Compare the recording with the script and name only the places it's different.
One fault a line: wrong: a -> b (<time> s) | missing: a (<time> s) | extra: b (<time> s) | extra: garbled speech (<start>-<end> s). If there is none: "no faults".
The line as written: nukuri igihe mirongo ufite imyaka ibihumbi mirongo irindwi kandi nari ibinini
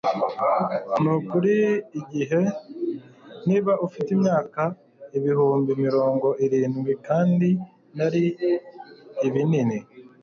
wrong: mirongo -> niba (3.5 s)